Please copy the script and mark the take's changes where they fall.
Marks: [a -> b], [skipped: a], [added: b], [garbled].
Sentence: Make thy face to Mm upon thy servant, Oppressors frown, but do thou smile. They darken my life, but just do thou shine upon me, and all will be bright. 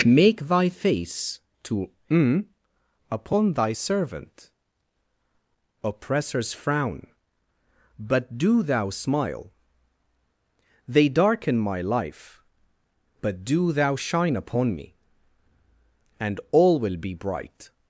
Make thy face to Mm upon thy servant, Oppressors frown, but do thou smile. They darken my life, but [skipped: just] do thou shine upon me, and all will be bright.